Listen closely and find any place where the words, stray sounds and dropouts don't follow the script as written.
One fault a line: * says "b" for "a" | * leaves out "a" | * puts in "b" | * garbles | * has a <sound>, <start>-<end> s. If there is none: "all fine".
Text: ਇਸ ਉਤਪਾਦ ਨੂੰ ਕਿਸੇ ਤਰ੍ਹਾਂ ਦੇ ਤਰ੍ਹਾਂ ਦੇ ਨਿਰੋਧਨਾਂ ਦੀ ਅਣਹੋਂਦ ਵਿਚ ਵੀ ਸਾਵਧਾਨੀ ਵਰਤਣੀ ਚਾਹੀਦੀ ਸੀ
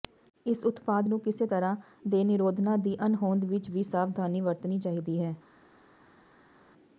* leaves out "ਤਰ੍ਹਾਂ ਦੇ"
* says "ਹੈ" for "ਸੀ"